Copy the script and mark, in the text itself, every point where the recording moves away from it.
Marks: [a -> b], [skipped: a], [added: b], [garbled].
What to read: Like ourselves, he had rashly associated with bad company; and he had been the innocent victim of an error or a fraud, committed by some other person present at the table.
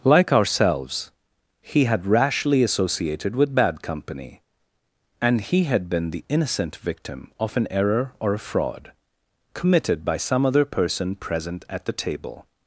Like ourselves, he had rashly associated with bad company; and he had been the innocent victim of an error or a fraud, committed by some other person present at the table.